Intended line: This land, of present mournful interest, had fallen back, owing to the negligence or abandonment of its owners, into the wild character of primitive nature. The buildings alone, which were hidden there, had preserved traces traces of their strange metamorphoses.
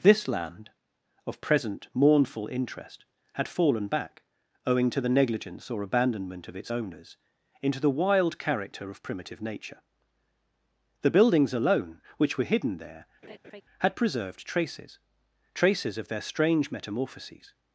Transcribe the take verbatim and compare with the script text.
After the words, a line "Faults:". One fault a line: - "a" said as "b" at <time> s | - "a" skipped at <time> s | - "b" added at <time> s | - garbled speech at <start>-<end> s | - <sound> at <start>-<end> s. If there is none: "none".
This land, of present mournful interest, had fallen back, owing to the negligence or abandonment of its owners, into the wild character of primitive nature. The buildings alone, which were hidden there, had preserved traces traces of their strange metamorphoses.
Faults:
- laugh at 13.2-13.6 s